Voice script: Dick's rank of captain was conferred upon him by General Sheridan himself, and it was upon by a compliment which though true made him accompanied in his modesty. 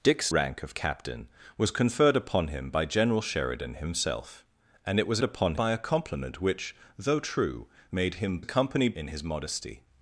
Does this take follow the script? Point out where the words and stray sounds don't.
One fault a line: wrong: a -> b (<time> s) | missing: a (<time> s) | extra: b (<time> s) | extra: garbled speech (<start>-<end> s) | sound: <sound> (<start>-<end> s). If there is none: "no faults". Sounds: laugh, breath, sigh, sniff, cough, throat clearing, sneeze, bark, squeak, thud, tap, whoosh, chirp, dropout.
no faults